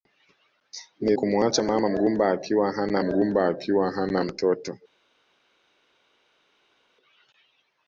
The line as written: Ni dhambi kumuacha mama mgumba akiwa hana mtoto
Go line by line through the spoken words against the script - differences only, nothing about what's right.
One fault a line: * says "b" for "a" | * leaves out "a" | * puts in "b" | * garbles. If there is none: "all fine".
* leaves out "dhambi"
* puts in "mgumba akiwa hana"